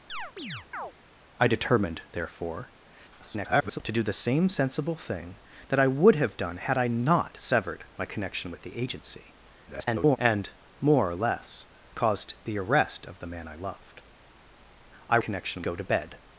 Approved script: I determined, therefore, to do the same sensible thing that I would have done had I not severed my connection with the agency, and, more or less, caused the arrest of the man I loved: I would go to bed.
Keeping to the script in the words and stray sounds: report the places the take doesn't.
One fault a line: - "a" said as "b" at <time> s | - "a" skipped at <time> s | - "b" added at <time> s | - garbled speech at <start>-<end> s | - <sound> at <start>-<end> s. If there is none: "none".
- chirp at 0.1-0.9 s
- garbled speech at 3.1-3.8 s
- garbled speech at 9.7-10.2 s
- "would" said as "connection" at 15.2 s